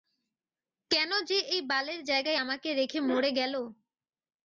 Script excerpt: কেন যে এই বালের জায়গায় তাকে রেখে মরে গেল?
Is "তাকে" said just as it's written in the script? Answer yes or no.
no